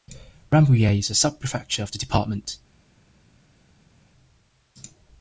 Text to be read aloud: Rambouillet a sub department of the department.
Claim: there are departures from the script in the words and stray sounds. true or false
true